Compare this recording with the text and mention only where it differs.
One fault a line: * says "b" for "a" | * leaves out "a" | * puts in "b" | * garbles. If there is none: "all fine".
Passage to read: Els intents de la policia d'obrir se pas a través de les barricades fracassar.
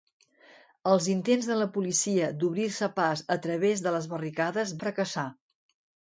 all fine